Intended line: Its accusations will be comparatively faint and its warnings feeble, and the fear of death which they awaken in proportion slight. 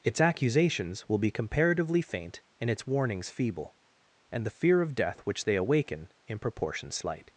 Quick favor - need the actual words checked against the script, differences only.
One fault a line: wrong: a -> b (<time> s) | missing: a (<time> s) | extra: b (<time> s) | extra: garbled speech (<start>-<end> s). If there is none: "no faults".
no faults